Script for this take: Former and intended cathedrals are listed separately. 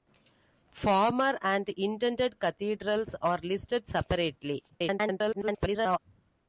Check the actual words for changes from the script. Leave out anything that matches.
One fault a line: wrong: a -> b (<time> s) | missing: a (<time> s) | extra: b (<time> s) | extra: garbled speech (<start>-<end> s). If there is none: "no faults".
extra: garbled speech (4.7-6.0 s)